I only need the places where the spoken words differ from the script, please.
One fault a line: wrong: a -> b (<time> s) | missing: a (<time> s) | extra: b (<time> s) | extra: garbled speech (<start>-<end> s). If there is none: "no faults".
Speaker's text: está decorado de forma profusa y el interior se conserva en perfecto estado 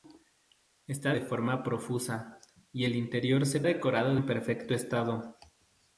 missing: decorado (1.1 s)
wrong: conserva -> decorado (3.6 s)